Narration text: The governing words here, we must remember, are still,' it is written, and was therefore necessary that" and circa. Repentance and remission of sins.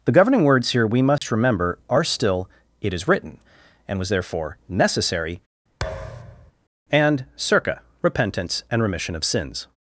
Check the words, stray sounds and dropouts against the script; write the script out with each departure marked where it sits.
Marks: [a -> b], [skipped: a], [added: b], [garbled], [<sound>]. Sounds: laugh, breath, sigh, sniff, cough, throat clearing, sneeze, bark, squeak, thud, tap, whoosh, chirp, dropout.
The governing words here, we must [dropout] remember, are still,' it is written, and was therefore necessary [skipped: that"] [thud] and circa. Repentance and remission of sins.